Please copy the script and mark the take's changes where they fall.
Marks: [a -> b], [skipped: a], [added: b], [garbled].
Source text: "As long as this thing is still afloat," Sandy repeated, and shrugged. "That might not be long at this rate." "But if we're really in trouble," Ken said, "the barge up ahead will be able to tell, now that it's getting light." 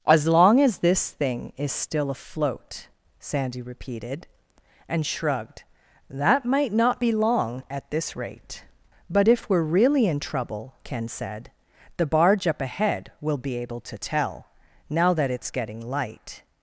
"As long as this thing is still afloat," Sandy repeated, and shrugged. "That might not be long at this rate." "But if we're really in trouble," Ken said, "the barge up ahead will be able to tell, now that it's getting light."